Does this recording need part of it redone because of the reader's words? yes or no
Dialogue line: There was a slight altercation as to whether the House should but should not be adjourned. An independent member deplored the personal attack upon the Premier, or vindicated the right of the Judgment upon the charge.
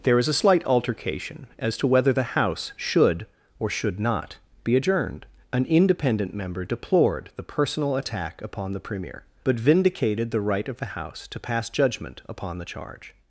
yes